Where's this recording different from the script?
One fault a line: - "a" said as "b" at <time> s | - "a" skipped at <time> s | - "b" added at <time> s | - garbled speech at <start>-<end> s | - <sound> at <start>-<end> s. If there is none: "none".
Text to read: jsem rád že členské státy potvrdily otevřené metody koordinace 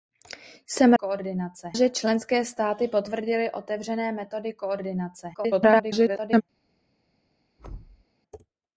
- "rád" said as "koordinace" at 0.9 s
- garbled speech at 5.3-6.4 s
- thud at 7.6-8.0 s